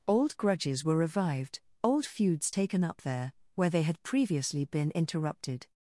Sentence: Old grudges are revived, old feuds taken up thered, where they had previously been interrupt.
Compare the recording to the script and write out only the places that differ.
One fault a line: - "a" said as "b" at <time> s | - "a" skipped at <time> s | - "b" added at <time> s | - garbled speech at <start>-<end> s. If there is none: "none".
- "are" said as "were" at 0.8 s
- "thered" said as "there" at 3.0 s
- "interrupt" said as "interrupted" at 4.9 s